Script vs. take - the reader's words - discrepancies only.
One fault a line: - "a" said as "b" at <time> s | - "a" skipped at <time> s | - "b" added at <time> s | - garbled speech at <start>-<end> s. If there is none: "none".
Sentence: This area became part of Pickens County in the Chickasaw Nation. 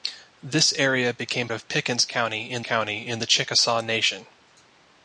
- "part" skipped at 1.5 s
- "County in" added at 2.6 s